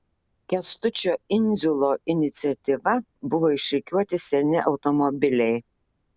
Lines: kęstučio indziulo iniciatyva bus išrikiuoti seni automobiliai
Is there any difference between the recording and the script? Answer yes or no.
yes